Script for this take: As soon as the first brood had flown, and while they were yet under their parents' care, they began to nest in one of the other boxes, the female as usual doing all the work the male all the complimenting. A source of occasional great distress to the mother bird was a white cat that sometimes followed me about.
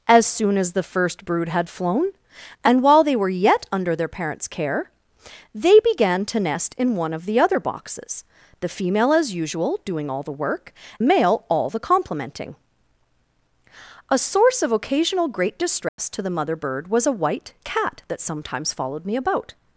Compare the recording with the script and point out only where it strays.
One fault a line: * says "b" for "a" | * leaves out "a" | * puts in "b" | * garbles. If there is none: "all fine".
all fine